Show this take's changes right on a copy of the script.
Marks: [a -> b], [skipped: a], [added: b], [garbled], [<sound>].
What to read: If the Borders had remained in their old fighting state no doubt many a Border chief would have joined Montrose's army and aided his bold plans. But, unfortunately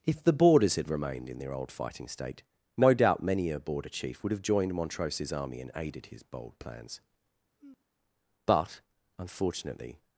If the Borders had remained in their old fighting state no doubt many a Border chief would have joined Montrose's army and aided his bold plans. [sigh] But, unfortunately